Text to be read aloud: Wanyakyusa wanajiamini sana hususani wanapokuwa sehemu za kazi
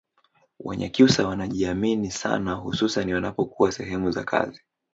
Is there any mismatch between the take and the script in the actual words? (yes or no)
no